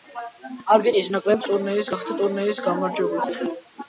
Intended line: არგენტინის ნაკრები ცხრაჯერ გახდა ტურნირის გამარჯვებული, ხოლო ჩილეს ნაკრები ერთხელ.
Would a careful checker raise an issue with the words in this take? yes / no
yes